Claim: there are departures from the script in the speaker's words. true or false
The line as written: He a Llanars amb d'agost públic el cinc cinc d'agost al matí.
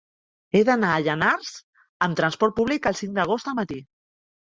true